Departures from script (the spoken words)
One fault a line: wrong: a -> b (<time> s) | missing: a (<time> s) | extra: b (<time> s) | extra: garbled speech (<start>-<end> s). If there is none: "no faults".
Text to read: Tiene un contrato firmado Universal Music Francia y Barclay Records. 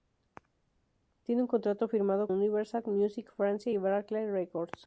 no faults